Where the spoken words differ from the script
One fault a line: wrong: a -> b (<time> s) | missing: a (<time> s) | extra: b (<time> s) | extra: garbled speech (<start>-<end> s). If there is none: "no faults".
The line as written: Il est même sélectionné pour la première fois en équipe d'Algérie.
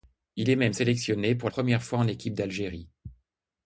missing: la (1.5 s)